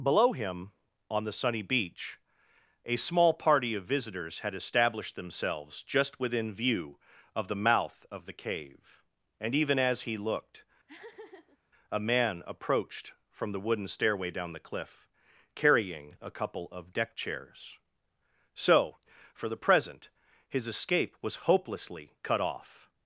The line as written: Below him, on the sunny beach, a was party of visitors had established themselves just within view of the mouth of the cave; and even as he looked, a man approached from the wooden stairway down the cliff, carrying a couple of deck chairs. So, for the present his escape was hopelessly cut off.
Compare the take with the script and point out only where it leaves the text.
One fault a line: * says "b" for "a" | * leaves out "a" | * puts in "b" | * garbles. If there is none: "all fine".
* says "small" for "was"